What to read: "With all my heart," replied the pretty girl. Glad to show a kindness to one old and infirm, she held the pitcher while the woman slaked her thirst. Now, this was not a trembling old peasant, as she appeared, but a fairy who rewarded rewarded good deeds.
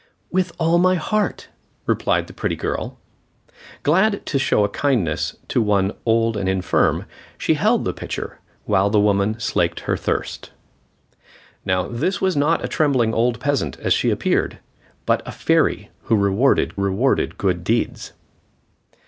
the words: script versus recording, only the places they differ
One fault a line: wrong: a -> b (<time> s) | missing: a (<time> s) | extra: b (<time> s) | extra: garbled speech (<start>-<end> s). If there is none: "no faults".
no faults